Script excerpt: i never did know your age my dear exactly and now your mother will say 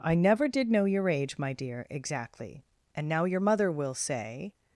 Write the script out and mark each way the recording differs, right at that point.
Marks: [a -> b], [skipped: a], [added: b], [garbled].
i never did know your age my dear exactly and now your mother will say